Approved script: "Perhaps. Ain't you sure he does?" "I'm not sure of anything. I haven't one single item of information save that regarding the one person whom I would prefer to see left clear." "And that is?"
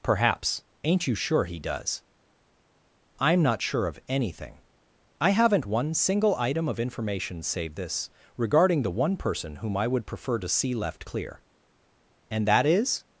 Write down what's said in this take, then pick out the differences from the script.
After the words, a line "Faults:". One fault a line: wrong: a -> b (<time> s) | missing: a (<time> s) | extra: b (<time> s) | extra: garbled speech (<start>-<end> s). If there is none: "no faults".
"Perhaps. Ain't you sure he does?" "I'm not sure of anything. I haven't one single item of information save this regarding the one person whom I would prefer to see left clear." "And that is?"
Faults:
wrong: that -> this (7.8 s)